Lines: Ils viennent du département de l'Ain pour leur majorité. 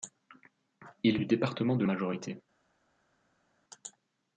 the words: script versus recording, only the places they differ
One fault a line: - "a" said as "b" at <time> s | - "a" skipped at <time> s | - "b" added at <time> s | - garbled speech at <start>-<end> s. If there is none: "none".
- "viennent" skipped at 1.2 s
- "l'Ain pour leur" skipped at 1.8 s